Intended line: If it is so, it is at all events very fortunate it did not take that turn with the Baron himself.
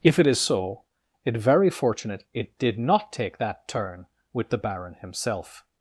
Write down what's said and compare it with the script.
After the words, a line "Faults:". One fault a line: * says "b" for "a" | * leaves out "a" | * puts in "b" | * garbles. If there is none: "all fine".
If it is so, it very fortunate it did not take that turn with the Baron himself.
Faults:
* leaves out "is at all events"